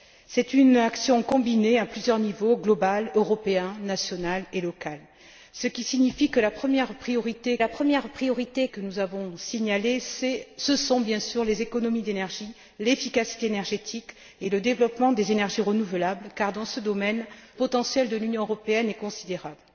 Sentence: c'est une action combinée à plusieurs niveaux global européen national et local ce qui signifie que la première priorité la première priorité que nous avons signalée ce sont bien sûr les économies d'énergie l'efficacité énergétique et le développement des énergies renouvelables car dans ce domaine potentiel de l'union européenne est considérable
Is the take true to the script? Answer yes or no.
yes